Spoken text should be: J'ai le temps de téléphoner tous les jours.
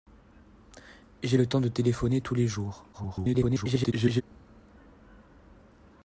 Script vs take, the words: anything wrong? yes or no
yes